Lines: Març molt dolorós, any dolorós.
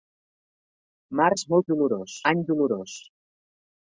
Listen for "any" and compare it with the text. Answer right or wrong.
right